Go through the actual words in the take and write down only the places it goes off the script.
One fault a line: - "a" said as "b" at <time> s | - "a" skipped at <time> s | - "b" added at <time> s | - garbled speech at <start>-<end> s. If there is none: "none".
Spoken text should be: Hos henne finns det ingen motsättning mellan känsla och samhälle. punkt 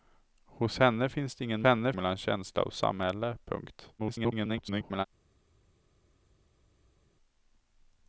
- "motsättning" said as "henne" at 1.6 s
- garbled speech at 4.0-5.1 s